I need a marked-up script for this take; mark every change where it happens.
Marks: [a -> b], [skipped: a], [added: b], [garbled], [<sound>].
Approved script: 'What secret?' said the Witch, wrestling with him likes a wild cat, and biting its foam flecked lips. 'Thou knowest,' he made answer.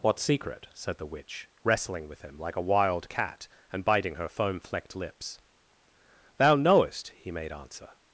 'What secret?' said the Witch, wrestling with him [likes -> like] a wild cat, and biting [its -> her] foam flecked lips. 'Thou knowest,' he made answer.